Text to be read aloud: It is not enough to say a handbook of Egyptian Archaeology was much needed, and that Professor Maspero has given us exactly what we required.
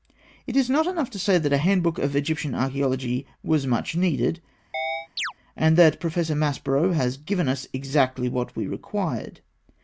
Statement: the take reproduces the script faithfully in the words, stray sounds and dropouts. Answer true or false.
false